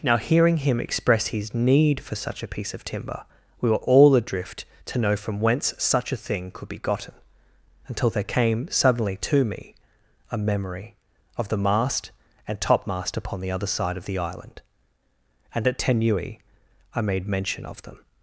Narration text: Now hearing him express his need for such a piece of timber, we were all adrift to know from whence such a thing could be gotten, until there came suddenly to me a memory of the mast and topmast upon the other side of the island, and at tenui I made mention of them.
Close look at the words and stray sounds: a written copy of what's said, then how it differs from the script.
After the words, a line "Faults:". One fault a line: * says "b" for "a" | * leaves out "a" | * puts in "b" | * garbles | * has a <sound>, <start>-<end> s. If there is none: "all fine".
Now hearing him express his need for such a piece of timber, we were all adrift to know from whence such a thing could be gotten, until there came suddenly to me a memory of the mast and topmast upon the other side of the island, and at tenui I made mention of them.
Faults:
all fine